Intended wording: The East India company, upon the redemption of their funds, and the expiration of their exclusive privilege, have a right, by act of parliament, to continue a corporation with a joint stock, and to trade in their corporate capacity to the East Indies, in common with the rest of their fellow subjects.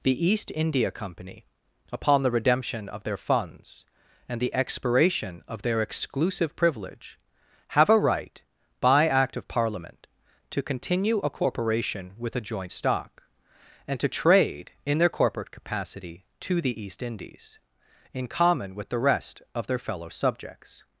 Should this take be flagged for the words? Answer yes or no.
no